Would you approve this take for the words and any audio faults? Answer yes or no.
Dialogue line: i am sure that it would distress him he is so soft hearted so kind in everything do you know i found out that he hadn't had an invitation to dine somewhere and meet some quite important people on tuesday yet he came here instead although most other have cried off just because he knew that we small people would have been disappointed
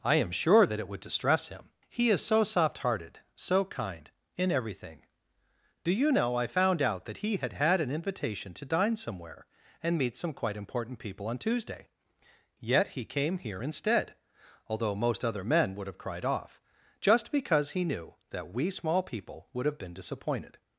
no